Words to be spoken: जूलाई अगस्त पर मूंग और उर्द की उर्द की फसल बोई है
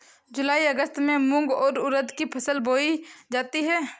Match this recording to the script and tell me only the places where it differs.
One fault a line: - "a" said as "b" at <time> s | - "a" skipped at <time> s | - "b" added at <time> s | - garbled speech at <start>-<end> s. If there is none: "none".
- "पर" said as "में" at 1.0 s
- "उर्द की" skipped at 2.2 s
- "जाती" added at 3.3 s